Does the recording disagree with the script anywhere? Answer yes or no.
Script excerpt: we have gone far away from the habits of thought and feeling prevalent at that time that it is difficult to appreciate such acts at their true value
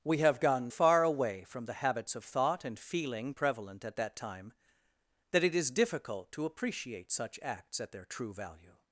no